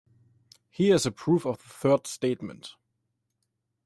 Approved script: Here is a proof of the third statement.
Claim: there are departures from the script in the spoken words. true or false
false